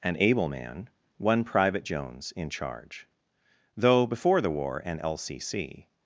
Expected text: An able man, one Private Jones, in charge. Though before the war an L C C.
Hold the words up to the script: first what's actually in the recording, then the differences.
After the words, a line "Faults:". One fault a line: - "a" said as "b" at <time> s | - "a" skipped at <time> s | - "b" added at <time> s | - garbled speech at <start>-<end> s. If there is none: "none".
An able man, one Private Jones, in charge. Though before the war an L C C.
Faults:
none